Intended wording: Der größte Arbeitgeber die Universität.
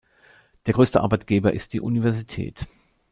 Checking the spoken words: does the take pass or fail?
fail